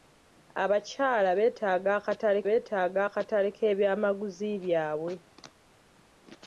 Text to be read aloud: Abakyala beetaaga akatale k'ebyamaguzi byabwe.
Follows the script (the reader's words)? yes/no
no